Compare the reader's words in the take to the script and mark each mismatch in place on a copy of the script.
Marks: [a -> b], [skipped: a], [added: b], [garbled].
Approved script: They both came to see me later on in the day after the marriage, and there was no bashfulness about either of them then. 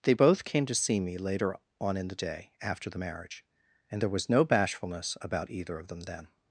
They both came to see me later on in the day after the marriage, and there was no bashfulness about either of them then.